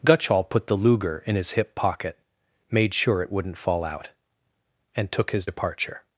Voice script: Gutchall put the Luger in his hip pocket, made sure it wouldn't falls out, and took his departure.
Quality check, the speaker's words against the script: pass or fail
fail